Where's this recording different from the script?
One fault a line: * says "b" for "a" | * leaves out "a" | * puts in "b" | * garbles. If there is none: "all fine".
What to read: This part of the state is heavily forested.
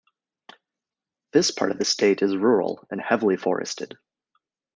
* puts in "rural and"